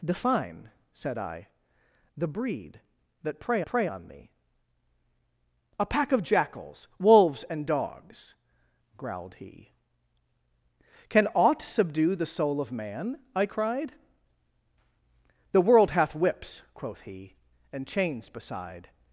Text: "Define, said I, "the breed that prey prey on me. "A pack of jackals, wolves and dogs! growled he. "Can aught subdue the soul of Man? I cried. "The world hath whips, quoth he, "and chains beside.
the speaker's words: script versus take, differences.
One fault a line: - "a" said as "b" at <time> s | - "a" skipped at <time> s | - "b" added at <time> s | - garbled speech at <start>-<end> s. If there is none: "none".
none